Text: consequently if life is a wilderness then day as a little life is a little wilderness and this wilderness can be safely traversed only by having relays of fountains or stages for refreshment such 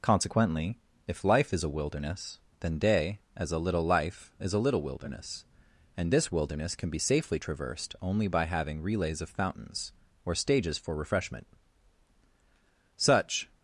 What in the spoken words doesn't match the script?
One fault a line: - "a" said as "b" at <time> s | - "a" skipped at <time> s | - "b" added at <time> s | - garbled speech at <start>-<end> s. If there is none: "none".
none